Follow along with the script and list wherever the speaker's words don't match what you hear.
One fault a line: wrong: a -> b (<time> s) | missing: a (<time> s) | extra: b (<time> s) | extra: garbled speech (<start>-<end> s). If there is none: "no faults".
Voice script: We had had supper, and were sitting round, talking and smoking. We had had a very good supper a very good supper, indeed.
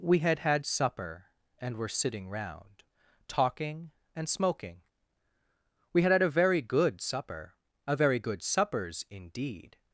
wrong: supper -> suppers (8.4 s)